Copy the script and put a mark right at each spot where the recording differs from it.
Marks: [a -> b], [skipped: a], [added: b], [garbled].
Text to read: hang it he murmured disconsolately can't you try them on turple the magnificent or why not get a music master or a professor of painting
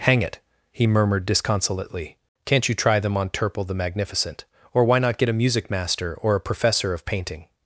hang it he murmured disconsolately can't you try them on turple the magnificent or why not get a music master or a professor of painting